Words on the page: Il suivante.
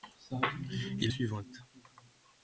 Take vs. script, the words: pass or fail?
pass